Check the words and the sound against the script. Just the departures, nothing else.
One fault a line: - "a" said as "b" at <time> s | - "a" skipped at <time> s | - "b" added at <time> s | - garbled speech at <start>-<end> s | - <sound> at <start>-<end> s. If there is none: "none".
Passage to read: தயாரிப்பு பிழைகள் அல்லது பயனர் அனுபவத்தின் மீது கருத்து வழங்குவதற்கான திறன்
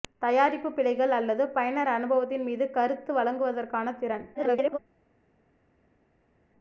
- garbled speech at 4.3-4.8 s